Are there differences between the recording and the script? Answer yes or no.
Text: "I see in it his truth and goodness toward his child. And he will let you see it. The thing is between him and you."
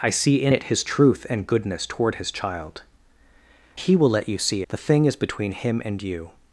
yes